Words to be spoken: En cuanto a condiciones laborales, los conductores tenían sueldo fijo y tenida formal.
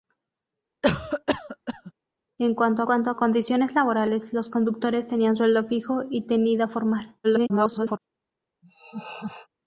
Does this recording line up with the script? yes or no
no